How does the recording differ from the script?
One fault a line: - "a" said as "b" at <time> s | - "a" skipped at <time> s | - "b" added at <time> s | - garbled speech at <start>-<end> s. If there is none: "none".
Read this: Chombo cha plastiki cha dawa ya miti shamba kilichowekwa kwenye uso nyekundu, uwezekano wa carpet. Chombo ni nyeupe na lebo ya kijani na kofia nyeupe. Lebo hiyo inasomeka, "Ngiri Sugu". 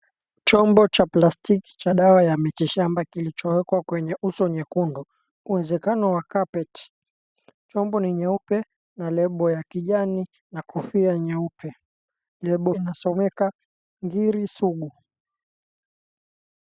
- "hiyo" skipped at 12.7 s